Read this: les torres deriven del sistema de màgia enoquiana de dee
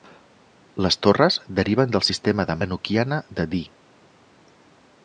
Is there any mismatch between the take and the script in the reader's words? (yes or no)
yes